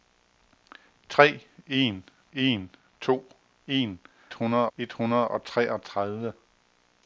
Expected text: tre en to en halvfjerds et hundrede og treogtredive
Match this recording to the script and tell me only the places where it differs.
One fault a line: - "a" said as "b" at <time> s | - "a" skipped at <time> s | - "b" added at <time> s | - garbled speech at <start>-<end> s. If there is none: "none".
- "en" added at 2.3 s
- "halvfjerds" said as "hundrede" at 4.3 s